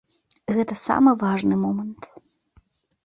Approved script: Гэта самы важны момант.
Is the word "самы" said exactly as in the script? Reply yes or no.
yes